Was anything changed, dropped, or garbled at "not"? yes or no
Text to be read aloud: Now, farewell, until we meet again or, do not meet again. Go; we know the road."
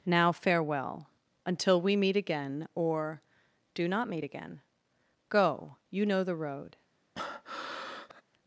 no